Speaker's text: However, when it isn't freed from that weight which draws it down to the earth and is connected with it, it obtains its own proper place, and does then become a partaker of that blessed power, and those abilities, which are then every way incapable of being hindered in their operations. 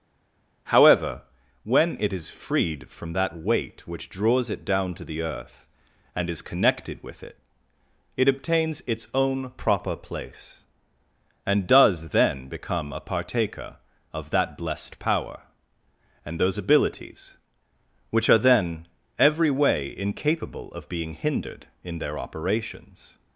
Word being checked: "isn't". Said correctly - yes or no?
no